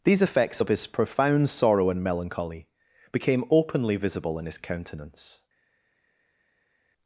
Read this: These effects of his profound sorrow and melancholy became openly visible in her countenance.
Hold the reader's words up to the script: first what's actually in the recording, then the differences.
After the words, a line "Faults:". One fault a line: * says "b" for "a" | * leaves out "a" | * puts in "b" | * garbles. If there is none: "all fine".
These effects of his profound sorrow and melancholy became openly visible in his countenance.
Faults:
* says "his" for "her"